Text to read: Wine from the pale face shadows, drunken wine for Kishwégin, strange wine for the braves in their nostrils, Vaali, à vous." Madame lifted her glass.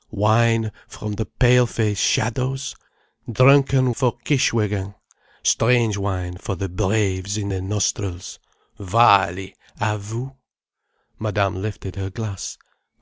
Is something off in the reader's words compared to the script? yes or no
yes